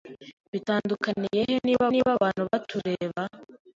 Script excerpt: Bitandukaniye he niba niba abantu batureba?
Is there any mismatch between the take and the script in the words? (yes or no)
no